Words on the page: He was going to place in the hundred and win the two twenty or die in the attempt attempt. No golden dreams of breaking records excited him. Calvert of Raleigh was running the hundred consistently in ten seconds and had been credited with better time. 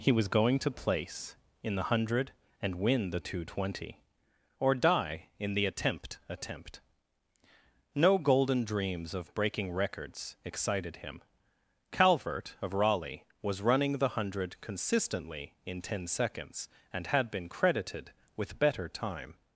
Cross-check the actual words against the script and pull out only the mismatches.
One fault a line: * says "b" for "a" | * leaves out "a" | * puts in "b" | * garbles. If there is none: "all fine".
all fine